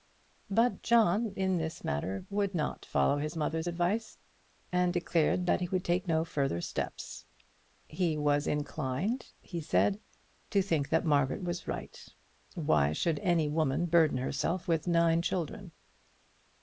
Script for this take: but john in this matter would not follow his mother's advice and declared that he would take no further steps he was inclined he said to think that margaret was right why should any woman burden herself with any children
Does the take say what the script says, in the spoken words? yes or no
no